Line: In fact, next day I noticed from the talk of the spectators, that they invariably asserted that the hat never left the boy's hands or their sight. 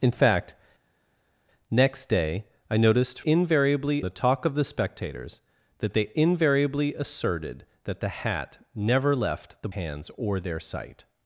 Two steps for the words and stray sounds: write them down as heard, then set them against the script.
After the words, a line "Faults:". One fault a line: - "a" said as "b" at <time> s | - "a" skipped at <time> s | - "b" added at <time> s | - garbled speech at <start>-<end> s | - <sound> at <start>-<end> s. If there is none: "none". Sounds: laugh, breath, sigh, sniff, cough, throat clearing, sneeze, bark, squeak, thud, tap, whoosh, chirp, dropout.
In fact, next day I noticed invariably the talk of the spectators, that they invariably asserted that the hat never left the hands or their sight.
Faults:
- "from" said as "invariably" at 3.2 s
- "boy's" skipped at 9.7 s